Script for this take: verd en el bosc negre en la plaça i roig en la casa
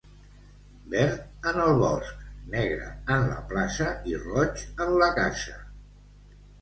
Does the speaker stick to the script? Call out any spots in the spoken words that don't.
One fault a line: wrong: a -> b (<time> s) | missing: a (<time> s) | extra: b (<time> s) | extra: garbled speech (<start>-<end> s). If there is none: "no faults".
no faults